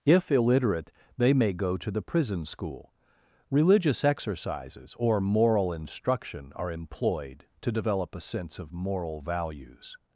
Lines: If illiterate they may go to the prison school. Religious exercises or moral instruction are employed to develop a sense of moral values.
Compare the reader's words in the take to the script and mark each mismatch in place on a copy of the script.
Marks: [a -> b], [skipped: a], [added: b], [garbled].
If illiterate they may go to the prison school. Religious exercises or moral instruction are employed to develop a sense of moral values.